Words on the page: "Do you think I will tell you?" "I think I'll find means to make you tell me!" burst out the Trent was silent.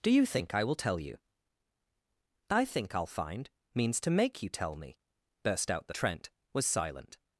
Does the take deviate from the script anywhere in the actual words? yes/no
no